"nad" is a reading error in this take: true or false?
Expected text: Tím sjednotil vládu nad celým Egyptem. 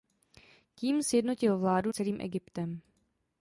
true